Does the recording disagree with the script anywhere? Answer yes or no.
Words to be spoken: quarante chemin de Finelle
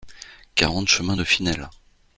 no